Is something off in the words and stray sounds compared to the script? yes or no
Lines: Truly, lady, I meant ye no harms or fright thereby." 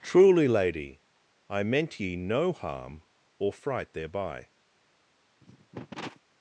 yes